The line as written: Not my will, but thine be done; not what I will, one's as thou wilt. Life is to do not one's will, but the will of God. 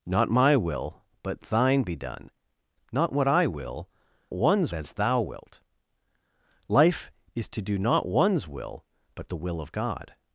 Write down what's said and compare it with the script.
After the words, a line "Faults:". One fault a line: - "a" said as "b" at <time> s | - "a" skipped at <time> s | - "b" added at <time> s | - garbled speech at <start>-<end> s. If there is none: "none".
Not my will, but thine be done; not what I will, one's as thou wilt. Life is to do not one's will, but the will of God.
Faults:
none